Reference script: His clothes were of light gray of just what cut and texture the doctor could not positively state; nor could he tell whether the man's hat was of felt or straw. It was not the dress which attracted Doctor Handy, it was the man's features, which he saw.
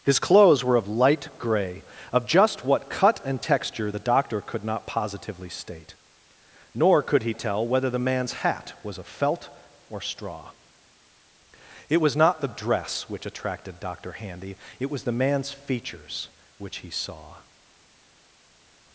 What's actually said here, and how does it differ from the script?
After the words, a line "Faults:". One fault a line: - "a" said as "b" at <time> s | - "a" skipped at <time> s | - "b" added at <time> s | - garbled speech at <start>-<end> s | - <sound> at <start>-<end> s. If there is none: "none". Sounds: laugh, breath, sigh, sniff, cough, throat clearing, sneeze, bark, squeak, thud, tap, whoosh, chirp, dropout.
His clothes were of light gray of just what cut and texture the doctor could not positively state; nor could he tell whether the man's hat was of felt or straw. It was not the dress which attracted Doctor Handy, it was the man's features, which he saw.
Faults:
none